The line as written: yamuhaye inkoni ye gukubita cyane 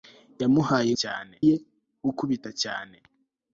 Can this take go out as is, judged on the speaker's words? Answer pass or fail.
fail